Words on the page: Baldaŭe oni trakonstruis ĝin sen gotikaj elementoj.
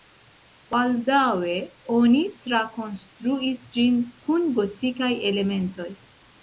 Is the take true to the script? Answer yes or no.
no